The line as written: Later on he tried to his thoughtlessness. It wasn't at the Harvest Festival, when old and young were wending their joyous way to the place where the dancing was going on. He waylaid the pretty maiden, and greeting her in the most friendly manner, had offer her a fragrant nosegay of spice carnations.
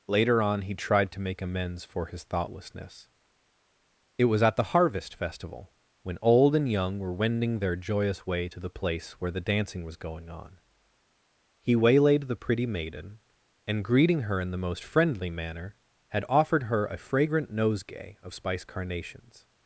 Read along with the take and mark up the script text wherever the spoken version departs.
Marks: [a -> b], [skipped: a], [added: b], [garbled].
Later on he tried to [added: make amends for] his thoughtlessness. It [wasn't -> was] at the Harvest Festival, when old and young were wending their joyous way to the place where the dancing was going on. He waylaid the pretty maiden, and greeting her in the most friendly manner, had [offer -> offered] her a fragrant nosegay of spice carnations.